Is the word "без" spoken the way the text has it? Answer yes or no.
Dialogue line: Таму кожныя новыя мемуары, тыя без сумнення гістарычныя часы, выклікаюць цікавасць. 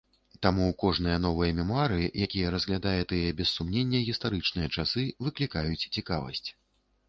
yes